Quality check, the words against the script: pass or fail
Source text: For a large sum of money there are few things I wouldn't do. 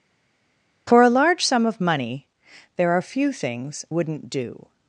fail